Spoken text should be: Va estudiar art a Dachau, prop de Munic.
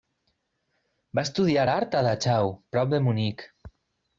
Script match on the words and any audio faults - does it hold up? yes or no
yes